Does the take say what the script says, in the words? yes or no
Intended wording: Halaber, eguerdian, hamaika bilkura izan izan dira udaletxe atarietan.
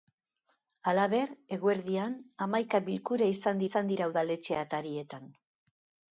yes